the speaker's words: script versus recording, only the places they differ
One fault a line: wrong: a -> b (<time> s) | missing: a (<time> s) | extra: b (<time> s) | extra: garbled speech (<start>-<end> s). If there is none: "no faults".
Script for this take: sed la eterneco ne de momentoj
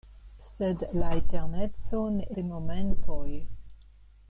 no faults